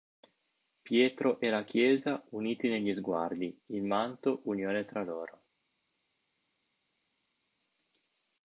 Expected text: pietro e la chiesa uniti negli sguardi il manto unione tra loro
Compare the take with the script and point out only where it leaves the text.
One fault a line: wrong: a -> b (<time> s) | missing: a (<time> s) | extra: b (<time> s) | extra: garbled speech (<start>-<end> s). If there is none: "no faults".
no faults